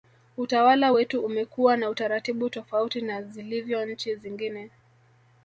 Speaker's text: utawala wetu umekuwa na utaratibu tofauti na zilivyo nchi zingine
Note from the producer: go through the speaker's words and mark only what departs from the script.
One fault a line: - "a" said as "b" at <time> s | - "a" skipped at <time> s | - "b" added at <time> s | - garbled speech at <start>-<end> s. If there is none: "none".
none